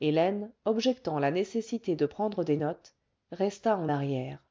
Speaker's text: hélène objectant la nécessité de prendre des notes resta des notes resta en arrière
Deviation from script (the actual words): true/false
true